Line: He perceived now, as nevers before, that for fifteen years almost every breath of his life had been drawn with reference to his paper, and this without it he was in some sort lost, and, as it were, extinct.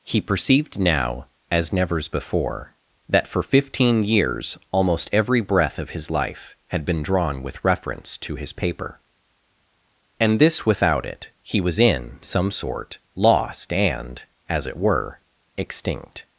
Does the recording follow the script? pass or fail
pass